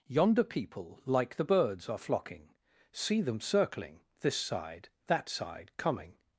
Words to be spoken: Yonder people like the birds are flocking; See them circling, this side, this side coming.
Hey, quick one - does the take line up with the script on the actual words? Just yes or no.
no